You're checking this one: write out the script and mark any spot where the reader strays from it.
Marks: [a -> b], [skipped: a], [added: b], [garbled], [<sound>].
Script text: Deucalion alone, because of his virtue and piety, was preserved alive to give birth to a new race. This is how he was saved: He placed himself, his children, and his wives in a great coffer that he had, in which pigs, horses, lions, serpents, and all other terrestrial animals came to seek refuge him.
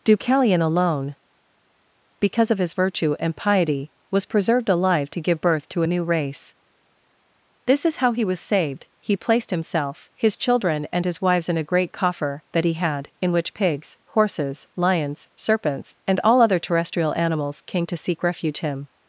Deucalion alone, because of his virtue and piety, was preserved alive to give birth to a new race. This is how he was saved: He placed himself, his children, and his wives in a great coffer that he had, in which pigs, horses, lions, serpents, and all other terrestrial animals came to seek refuge him.